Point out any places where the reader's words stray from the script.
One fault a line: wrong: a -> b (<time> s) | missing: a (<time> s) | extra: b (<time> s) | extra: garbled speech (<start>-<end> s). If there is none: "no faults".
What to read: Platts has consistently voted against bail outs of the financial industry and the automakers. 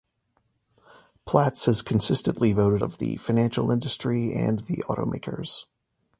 missing: against bail outs (2.8 s)